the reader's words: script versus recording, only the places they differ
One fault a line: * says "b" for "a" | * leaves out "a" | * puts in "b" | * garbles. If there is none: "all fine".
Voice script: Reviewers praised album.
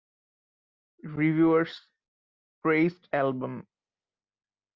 all fine